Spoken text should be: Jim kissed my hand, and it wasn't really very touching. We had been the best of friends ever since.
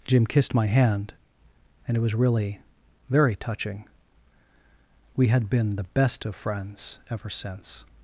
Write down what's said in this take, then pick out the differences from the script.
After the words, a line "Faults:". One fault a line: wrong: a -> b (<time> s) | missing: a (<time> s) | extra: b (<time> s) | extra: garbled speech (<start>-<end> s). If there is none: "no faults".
Jim kissed my hand, and it was really very touching. We had been the best of friends ever since.
Faults:
wrong: wasn't -> was (2.0 s)